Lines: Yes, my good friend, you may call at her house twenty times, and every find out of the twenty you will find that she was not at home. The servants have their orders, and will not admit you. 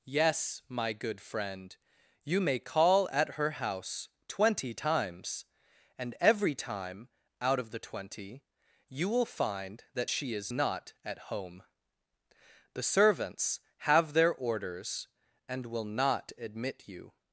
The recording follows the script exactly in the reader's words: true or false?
false